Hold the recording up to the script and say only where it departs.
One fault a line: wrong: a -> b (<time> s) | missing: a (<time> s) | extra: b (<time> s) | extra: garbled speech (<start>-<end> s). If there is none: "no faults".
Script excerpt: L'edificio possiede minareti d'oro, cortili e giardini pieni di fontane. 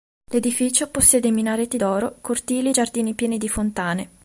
no faults